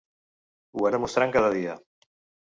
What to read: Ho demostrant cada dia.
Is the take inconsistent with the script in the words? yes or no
no